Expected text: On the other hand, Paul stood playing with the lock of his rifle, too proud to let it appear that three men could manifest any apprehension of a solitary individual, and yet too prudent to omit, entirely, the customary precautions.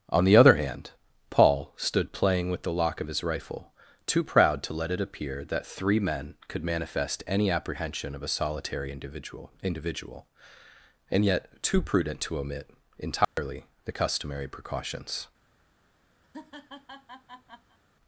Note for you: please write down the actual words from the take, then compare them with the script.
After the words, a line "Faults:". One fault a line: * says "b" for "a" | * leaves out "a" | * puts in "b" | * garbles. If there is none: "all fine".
On the other hand, Paul stood playing with the lock of his rifle, too proud to let it appear that three men could manifest any apprehension of a solitary individual individual, and yet too prudent to omit, entirely, the customary precautions.
Faults:
* puts in "individual"